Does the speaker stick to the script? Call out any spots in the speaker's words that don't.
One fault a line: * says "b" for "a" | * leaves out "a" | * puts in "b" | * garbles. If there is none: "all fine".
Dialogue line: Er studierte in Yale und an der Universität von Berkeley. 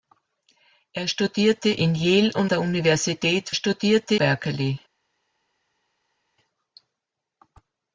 * leaves out "an"
* says "studierte" for "von"